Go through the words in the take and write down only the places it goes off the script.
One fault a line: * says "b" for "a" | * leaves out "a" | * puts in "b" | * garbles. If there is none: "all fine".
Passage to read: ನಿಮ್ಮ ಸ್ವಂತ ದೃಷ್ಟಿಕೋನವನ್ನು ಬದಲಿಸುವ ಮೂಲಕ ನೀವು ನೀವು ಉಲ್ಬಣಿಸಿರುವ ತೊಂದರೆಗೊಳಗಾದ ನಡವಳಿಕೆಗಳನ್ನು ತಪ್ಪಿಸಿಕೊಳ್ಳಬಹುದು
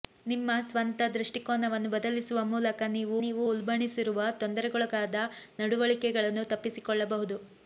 all fine